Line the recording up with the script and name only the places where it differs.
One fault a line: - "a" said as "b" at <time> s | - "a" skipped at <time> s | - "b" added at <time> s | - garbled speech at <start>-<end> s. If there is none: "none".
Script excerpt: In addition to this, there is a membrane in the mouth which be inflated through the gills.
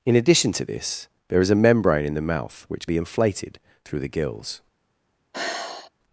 none